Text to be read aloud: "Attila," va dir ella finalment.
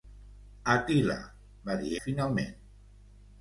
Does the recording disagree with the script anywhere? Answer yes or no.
yes